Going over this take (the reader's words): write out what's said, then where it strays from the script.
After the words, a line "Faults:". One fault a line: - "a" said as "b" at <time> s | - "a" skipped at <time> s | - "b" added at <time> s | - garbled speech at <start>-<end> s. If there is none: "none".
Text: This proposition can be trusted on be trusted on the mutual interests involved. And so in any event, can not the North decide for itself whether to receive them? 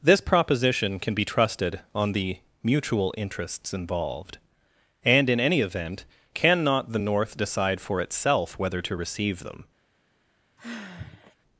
This proposition can be trusted on the mutual interests involved. And in any event, can not the North decide for itself whether to receive them?
Faults:
- "be trusted on" skipped at 2.1 s
- "so" skipped at 5.3 s